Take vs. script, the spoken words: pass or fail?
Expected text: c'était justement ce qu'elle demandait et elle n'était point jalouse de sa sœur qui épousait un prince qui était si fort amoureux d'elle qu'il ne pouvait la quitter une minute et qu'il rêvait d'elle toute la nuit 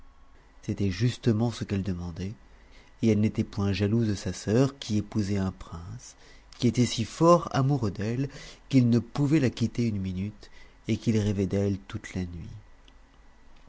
pass